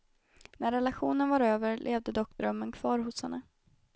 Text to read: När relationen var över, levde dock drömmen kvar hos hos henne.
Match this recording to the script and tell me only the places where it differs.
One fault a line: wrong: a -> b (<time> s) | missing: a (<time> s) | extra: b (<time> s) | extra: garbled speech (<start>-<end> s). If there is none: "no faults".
missing: hos (3.2 s)